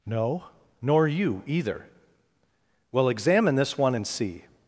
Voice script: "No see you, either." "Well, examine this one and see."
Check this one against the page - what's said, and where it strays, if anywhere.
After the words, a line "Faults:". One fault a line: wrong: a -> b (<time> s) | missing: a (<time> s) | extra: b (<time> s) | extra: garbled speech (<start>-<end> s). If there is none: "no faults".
"No nor you, either." "Well, examine this one and see."
Faults:
wrong: see -> nor (0.8 s)